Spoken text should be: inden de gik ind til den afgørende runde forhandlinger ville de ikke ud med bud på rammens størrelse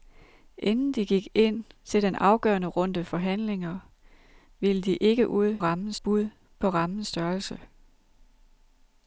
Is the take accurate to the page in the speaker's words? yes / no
no